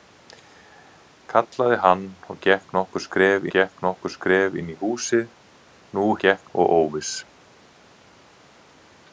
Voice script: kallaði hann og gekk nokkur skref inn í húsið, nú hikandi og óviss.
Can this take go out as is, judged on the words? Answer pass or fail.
fail